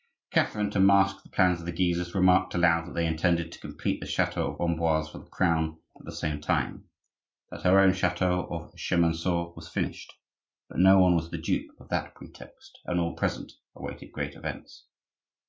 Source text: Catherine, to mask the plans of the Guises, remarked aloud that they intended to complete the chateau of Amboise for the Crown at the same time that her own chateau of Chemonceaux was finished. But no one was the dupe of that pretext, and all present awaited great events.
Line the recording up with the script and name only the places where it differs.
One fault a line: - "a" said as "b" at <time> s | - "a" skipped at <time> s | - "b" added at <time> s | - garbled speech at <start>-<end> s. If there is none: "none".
none